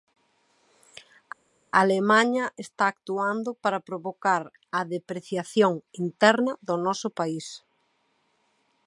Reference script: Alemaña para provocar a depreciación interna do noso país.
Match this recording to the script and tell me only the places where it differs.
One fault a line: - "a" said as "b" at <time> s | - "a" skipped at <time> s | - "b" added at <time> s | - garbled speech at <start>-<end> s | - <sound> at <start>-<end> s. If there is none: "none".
- "está actuando" added at 2.6 s